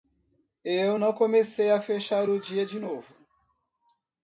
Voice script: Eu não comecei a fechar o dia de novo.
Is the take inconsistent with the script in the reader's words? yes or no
no